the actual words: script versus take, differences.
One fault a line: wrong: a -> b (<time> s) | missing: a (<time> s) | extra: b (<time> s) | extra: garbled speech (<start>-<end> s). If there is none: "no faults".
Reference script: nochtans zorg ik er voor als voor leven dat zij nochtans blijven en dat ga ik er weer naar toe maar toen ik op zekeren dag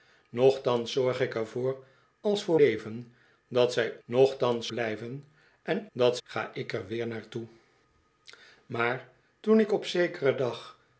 no faults